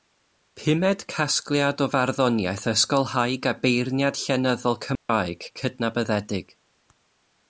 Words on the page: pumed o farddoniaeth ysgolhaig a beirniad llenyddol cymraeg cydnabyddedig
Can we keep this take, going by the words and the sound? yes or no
no